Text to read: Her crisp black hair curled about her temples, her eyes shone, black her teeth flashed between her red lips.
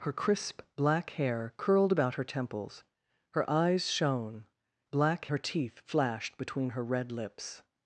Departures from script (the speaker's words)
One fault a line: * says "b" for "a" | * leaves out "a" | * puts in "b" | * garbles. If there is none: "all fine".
all fine